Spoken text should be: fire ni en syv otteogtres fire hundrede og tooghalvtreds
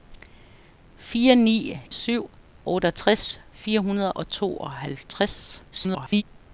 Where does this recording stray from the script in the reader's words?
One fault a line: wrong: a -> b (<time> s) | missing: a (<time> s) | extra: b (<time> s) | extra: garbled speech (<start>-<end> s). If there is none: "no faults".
missing: en (1.8 s)
extra: garbled speech (5.7-6.2 s)